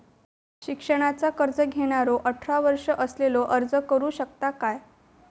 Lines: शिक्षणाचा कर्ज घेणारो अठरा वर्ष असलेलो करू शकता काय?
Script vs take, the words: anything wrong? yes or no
yes